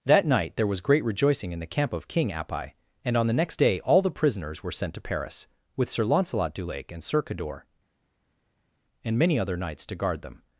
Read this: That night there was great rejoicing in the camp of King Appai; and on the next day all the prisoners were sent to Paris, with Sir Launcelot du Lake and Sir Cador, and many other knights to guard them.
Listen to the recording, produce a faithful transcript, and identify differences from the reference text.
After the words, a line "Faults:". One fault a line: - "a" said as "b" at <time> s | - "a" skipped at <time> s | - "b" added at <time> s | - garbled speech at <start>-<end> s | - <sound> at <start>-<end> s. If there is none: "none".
That night there was great rejoicing in the camp of King Appai; and on the next day all the prisoners were sent to Paris, with Sir Launcelot du Lake and Sir Cador, and many other knights to guard them.
Faults:
none